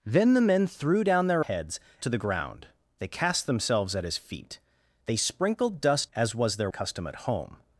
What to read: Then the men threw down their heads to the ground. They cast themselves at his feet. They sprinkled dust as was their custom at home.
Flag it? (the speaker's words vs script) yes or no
no